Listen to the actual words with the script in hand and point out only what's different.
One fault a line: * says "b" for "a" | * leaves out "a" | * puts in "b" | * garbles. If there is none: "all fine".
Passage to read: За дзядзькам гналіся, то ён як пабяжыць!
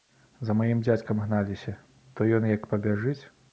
* puts in "маім"